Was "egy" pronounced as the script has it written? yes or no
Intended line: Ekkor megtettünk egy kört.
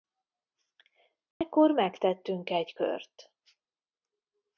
yes